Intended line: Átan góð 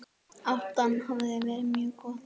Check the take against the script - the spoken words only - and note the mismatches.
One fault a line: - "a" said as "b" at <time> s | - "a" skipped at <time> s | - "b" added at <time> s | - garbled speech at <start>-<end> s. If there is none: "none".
- "hafi verið mjög" added at 1.1 s